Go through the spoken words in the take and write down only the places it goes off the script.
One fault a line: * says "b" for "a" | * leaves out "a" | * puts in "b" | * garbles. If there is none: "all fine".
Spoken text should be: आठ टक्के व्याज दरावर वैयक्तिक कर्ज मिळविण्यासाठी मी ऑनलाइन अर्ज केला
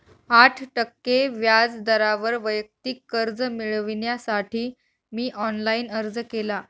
all fine